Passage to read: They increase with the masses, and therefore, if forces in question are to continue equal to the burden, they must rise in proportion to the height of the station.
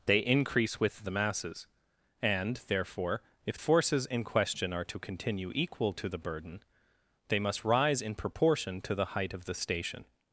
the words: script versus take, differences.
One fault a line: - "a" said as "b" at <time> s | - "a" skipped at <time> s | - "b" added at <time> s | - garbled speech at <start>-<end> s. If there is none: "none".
none